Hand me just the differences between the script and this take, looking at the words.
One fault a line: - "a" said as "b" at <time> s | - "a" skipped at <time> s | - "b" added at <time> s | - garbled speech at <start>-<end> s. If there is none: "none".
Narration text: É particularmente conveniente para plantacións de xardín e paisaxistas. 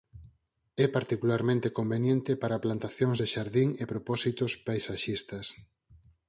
- "propósitos" added at 3.9 s